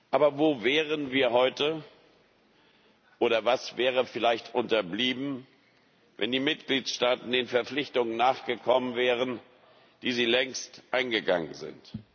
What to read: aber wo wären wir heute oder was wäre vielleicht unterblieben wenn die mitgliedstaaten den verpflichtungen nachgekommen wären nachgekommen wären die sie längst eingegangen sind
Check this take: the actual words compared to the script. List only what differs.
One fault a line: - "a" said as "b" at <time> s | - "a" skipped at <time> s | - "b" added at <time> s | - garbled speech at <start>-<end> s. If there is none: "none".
- "nachgekommen wären" skipped at 9.4 s